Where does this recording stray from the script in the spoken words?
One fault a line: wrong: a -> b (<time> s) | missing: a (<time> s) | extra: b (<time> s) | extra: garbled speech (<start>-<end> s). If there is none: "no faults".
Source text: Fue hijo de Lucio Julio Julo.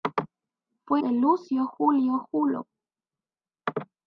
missing: hijo (1.0 s)